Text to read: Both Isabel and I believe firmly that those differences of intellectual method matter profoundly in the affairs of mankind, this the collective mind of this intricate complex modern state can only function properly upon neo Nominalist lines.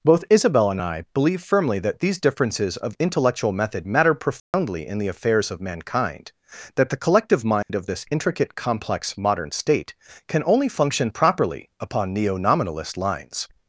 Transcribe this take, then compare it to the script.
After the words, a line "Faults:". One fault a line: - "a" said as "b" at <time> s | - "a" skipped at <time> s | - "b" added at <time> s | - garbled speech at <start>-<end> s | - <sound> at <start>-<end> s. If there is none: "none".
Both Isabel and I believe firmly that these differences of intellectual method matter profoundly in the affairs of mankind, that the collective mind of this intricate complex modern state can only function properly upon neo Nominalist lines.
Faults:
- "those" said as "these" at 2.0 s
- dropout at 4.4-4.5 s
- "this" said as "that" at 6.8 s
- dropout at 7.6-7.7 s